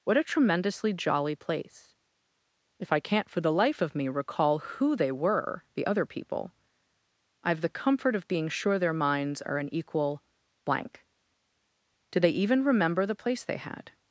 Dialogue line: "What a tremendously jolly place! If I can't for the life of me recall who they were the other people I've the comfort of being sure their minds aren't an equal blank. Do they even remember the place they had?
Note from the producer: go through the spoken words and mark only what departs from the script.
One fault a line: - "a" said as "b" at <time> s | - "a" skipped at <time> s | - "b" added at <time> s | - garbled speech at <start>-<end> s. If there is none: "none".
- "aren't" said as "are" at 9.4 s